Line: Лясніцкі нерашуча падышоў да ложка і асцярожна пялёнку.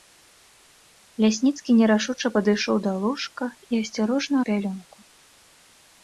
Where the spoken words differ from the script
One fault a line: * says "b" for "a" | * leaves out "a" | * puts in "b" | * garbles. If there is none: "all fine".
all fine